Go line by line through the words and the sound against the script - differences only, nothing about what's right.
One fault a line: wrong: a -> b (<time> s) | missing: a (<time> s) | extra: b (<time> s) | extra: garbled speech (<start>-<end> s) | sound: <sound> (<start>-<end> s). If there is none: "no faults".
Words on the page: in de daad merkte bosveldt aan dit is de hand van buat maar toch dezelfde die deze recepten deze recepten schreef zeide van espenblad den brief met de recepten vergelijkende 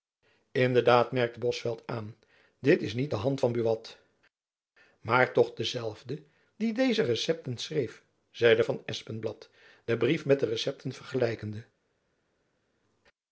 extra: niet (2.9 s)
missing: deze recepten (7.6 s)